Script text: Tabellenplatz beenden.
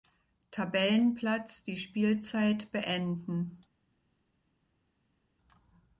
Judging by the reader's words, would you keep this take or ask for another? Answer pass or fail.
fail